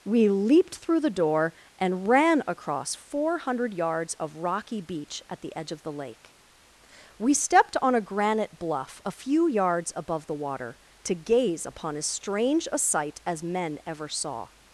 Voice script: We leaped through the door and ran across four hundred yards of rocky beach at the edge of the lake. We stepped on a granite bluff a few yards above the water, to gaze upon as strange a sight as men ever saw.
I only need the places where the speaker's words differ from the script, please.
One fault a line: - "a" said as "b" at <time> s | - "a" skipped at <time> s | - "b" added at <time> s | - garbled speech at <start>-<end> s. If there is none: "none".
none